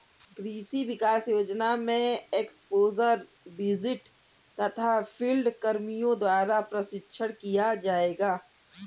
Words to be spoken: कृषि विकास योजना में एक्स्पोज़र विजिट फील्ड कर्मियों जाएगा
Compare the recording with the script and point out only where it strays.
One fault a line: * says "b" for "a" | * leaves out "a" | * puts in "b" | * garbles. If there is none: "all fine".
* puts in "तथा"
* puts in "द्वारा प्रशिक्षण किया"